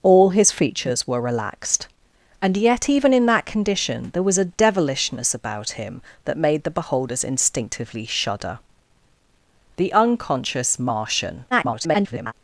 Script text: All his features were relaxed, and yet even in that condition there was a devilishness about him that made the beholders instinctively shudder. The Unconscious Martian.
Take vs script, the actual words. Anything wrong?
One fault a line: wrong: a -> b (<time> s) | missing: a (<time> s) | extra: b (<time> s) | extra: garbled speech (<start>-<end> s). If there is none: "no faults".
extra: garbled speech (11.5-12.3 s)